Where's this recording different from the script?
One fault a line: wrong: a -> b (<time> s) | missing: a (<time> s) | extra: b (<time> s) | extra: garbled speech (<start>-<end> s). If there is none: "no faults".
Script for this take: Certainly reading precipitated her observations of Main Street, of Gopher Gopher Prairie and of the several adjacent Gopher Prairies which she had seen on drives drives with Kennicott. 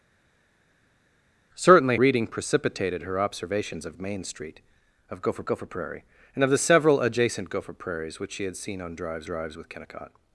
no faults